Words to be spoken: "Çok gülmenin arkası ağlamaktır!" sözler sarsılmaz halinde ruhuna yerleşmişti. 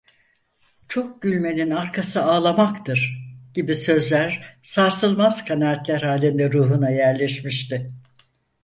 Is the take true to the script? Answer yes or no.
no